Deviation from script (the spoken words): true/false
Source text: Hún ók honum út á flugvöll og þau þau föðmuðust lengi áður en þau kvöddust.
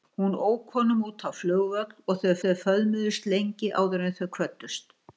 false